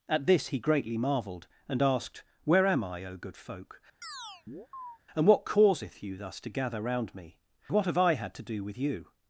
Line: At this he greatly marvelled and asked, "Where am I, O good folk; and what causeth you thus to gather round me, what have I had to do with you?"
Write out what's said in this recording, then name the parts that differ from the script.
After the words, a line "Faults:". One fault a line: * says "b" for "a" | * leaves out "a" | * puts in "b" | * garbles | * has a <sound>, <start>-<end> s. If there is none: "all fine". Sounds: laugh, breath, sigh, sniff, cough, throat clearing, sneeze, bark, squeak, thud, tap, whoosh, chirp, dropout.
At this he greatly marvelled and asked, "Where am I, O good folk; and what causeth you thus to gather round me, what have I had to do with you?"
Faults:
* has a chirp, 4.0-5.0 s